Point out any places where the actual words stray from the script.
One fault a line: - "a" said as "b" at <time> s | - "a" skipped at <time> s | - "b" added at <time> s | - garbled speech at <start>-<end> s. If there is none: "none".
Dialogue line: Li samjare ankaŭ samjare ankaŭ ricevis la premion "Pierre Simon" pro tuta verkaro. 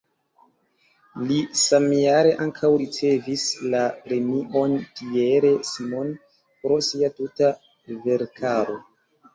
- "samjare ankaŭ" skipped at 2.7 s
- "sia" added at 6.9 s